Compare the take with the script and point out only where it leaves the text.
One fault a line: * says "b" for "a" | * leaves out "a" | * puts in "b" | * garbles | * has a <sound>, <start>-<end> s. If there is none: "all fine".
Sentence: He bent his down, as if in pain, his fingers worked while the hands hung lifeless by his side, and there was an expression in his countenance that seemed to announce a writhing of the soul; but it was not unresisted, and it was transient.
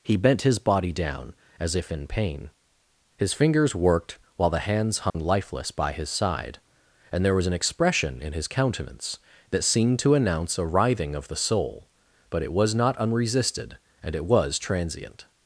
* puts in "body"
* has a dropout, 5.1-5.1 s